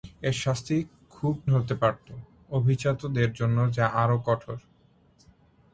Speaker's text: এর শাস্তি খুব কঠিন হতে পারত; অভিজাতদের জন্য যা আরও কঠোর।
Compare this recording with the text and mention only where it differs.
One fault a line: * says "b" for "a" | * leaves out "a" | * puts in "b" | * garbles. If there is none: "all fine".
* leaves out "কঠিন"